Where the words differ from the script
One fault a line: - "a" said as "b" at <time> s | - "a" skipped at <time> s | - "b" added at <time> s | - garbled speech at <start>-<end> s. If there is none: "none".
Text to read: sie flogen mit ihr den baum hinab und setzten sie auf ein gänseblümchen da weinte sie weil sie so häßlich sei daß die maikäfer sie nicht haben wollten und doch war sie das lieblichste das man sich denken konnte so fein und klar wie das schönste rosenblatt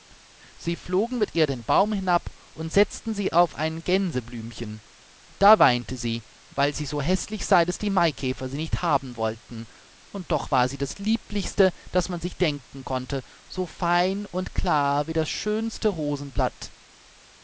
none